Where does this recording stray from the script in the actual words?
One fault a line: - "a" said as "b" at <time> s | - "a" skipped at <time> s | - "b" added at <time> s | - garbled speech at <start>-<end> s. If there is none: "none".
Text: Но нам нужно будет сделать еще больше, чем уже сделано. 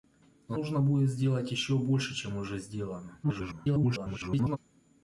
- "нам" skipped at 0.6 s
- garbled speech at 3.2-4.6 s